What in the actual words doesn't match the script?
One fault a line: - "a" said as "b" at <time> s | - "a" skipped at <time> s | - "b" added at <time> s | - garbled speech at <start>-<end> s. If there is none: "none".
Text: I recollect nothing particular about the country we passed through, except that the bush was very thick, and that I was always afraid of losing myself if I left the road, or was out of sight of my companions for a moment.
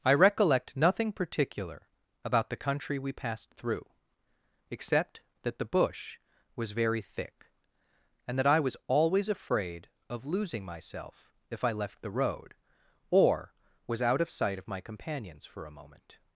none